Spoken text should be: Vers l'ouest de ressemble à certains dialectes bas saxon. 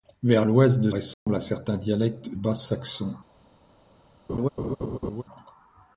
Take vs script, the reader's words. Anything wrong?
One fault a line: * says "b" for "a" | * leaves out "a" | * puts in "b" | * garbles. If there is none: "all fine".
all fine